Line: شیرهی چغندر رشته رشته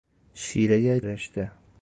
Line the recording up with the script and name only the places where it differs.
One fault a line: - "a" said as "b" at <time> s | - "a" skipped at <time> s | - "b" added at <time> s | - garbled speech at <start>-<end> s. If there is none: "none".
- "چغندر رشته" skipped at 1.0 s